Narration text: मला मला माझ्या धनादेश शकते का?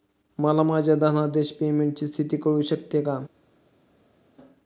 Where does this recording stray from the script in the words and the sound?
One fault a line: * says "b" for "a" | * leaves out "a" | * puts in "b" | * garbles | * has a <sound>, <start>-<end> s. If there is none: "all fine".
* leaves out "मला"
* puts in "पेमेंटची स्थिती कळू"